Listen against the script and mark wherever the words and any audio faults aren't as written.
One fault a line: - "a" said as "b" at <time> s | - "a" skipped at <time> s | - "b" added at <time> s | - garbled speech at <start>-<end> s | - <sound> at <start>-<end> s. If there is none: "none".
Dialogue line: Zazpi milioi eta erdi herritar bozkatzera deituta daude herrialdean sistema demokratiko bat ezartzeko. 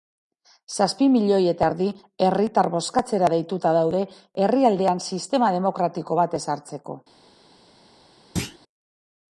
- thud at 8.4-8.6 s